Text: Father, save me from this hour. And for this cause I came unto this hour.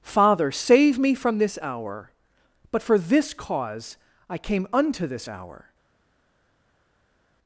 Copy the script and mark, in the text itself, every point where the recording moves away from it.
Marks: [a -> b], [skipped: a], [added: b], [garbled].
Father, save me from this hour. [And -> But] for this cause I came unto this hour.